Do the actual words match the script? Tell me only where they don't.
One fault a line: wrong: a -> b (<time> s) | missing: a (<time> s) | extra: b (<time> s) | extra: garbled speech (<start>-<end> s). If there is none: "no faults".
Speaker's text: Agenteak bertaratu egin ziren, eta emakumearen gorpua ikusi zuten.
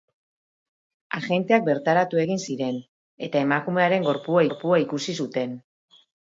extra: gorpua (4.5 s)